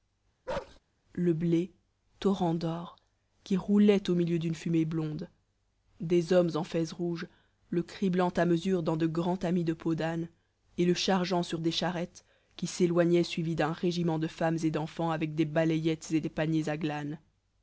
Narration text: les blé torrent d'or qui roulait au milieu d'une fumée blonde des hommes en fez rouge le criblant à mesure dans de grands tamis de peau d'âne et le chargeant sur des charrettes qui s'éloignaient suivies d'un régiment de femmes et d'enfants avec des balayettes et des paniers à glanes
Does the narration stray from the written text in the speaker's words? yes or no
yes